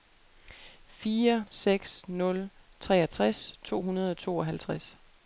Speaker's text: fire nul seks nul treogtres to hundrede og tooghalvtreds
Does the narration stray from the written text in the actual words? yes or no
yes